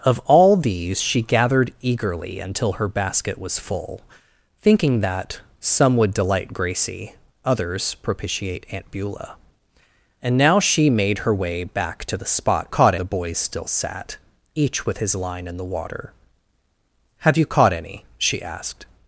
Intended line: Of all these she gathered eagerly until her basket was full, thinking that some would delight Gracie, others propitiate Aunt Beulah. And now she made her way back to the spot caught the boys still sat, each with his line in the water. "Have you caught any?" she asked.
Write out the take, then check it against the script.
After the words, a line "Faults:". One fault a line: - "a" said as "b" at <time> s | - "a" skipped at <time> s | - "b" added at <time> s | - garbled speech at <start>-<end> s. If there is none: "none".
Of all these she gathered eagerly until her basket was full, thinking that some would delight Gracie, others propitiate Aunt Beulah. And now she made her way back to the spot caught the boys still sat, each with his line in the water. "Have you caught any?" she asked.
Faults:
none